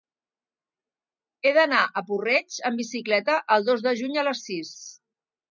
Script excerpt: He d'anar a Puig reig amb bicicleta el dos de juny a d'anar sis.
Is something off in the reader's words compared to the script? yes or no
yes